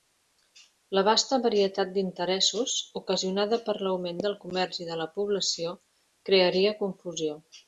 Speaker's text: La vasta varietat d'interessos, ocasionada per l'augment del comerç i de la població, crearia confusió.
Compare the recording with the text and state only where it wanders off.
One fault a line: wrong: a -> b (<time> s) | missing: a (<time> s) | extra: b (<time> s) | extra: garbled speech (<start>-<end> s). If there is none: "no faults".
no faults